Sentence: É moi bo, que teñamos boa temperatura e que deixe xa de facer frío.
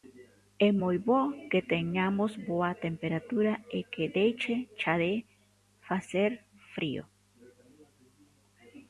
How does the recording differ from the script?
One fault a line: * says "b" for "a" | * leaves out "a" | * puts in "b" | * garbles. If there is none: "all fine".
all fine